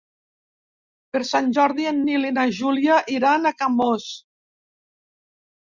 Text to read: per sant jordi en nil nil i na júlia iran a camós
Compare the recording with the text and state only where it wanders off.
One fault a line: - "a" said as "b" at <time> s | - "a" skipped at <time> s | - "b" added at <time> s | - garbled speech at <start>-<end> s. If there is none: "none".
- "nil" skipped at 2.3 s